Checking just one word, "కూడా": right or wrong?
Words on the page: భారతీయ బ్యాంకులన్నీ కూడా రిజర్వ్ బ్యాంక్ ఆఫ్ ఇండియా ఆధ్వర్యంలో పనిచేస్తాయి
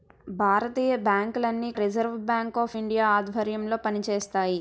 wrong